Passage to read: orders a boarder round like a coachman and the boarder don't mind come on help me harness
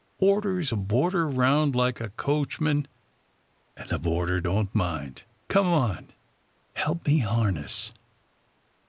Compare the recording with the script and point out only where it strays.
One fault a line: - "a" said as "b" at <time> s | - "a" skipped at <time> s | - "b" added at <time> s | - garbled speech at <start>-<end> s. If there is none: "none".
none